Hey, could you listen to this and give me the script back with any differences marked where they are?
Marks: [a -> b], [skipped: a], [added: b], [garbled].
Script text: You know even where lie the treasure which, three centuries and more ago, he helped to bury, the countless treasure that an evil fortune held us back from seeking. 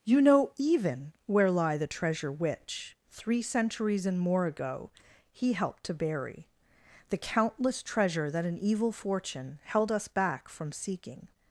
You know even where lie the treasure which, three centuries and more ago, he helped to bury, the countless treasure that an evil fortune held us back from seeking.